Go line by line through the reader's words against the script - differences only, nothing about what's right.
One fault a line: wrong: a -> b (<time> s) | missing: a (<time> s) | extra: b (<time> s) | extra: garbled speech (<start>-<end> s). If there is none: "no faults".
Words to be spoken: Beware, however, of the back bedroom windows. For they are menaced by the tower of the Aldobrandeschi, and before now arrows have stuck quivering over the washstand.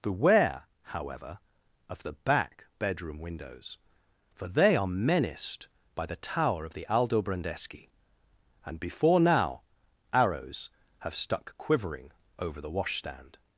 no faults